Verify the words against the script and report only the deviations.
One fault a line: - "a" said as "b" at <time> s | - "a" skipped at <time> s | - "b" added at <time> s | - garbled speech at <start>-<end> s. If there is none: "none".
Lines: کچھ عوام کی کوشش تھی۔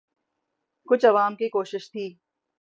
none